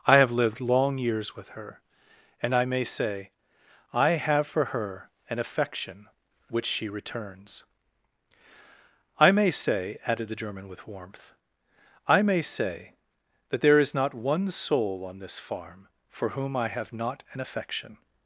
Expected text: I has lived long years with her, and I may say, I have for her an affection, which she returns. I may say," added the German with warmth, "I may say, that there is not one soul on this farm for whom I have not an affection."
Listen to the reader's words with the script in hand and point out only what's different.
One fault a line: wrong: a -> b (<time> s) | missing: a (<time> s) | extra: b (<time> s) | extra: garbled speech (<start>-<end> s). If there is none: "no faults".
wrong: has -> have (0.2 s)